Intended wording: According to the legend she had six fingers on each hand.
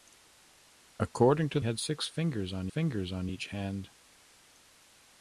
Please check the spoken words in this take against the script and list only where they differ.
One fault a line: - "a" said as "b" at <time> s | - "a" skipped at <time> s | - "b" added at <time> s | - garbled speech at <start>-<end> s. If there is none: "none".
- "the legend she had six" said as "had six fingers on" at 1.6 s